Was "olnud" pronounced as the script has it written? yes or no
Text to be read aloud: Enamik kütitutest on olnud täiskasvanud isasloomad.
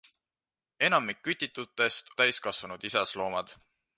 no